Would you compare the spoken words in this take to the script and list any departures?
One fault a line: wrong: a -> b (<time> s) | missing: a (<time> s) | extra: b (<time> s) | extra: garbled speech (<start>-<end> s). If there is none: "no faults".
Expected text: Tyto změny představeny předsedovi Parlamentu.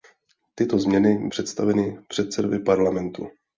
no faults